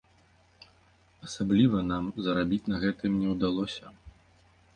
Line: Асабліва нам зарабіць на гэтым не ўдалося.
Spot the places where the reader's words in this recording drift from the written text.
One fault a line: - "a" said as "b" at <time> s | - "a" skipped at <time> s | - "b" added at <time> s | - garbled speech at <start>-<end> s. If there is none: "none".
none